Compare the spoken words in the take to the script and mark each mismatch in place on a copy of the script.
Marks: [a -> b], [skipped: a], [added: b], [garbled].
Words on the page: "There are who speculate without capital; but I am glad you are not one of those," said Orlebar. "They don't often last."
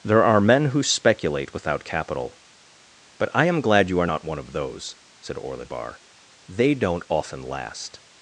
"There are [added: men] who speculate without capital; but I am glad you are not one of those," said Orlebar. "They don't often last."